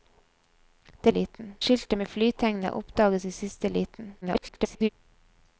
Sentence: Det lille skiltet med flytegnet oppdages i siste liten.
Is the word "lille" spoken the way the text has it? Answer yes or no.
no